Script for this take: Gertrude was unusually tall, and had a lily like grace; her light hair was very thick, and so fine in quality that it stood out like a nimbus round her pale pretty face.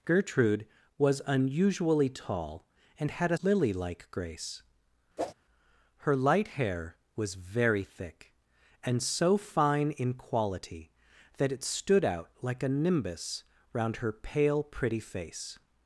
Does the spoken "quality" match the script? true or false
true